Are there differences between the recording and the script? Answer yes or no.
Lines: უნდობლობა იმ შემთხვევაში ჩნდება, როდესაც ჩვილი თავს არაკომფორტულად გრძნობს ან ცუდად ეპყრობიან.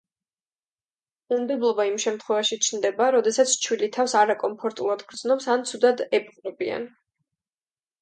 no